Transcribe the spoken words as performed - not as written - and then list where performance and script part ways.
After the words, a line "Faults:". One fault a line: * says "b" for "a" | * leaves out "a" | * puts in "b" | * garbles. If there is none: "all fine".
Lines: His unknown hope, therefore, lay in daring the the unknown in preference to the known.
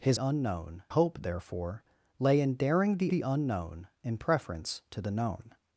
His unknown hope, therefore, lay in daring the the unknown in preference to the known.
Faults:
all fine